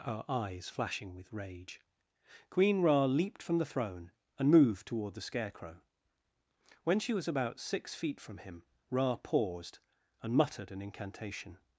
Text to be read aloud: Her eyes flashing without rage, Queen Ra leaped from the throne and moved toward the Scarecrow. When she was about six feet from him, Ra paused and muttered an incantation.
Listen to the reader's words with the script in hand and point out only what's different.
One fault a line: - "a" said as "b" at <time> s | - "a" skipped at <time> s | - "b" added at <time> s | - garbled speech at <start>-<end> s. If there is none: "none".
- "without" said as "with" at 1.2 s